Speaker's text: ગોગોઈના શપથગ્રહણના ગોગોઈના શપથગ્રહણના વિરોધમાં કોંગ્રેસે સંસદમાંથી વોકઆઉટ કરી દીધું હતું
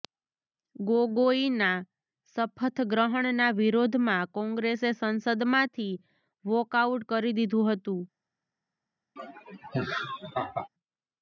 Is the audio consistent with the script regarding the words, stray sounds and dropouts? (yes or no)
no